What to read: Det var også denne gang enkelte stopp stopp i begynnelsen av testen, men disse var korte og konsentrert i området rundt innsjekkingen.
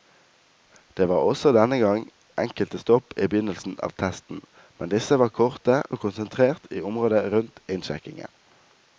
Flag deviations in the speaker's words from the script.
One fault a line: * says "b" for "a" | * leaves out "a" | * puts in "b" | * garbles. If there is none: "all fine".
* leaves out "stopp"